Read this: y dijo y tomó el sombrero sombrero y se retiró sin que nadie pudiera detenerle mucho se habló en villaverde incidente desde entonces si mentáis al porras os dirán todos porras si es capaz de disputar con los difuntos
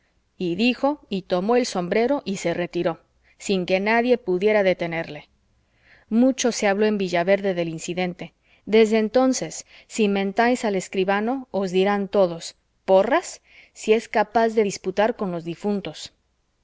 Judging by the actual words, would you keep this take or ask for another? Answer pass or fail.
fail